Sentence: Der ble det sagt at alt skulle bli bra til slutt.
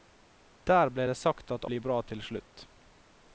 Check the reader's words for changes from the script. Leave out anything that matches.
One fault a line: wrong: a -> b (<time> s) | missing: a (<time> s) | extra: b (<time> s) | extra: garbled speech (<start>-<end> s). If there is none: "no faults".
missing: alt skulle (1.7 s)